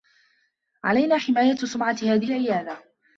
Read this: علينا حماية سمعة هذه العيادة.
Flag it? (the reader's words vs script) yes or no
no